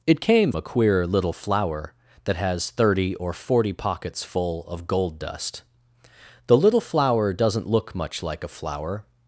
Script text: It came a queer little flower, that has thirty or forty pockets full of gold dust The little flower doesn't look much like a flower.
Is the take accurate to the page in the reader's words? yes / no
yes